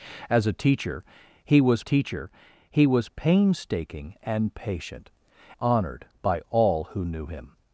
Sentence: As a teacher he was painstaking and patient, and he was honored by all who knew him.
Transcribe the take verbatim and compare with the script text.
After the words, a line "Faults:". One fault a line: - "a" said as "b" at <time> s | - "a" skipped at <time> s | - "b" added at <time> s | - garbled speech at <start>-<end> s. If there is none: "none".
As a teacher he was teacher he was painstaking and patient, honored by all who knew him.
Faults:
- "teacher he was" added at 1.8 s
- "and he was" skipped at 5.1 s